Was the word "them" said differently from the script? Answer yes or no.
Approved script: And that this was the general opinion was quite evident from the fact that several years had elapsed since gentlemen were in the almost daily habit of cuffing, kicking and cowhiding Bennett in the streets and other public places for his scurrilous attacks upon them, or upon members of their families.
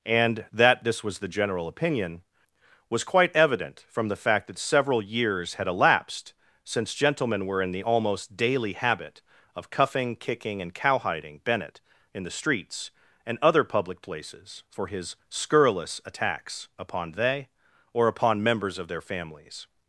yes